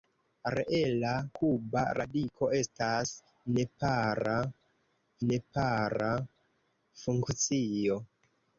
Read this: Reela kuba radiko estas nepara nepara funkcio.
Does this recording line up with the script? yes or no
yes